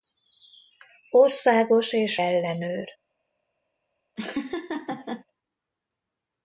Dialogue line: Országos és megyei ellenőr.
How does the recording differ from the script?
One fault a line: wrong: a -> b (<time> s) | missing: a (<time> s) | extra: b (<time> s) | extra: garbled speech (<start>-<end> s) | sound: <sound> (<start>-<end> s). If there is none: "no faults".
missing: megyei (2.2 s)
sound: laugh (4.2-5.2 s)